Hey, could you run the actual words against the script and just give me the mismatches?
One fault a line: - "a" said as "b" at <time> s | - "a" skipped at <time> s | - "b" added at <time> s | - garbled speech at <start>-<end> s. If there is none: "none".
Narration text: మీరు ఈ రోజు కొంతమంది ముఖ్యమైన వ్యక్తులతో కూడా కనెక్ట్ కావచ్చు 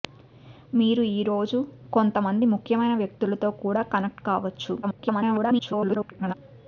- garbled speech at 4.8-6.3 s